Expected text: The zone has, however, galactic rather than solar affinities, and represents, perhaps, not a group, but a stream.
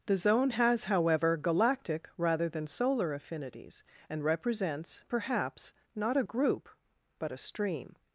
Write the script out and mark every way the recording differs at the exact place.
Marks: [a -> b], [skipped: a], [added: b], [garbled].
The zone has, however, galactic rather than solar affinities, and represents, perhaps, not a group, but a stream.